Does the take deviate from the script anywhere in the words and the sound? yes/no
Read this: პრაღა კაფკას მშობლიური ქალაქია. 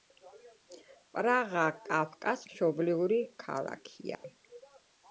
yes